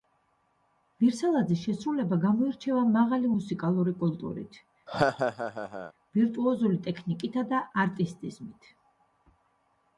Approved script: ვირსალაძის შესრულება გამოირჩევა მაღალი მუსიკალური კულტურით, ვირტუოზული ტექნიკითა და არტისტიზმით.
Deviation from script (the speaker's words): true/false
false